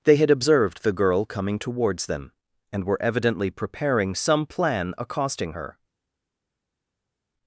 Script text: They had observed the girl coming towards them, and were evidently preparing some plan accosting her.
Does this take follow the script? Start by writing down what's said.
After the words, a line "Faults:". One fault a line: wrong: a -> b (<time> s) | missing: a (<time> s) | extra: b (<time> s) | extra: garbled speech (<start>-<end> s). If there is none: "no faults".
They had observed the girl coming towards them, and were evidently preparing some plan accosting her.
Faults:
no faults